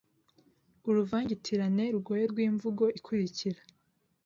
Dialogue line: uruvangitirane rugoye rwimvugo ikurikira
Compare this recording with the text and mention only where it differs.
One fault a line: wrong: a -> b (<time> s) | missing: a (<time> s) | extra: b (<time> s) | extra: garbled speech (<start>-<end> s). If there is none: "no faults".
no faults